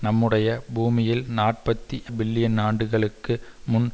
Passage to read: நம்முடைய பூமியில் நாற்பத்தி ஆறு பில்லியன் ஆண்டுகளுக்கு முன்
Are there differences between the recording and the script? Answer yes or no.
yes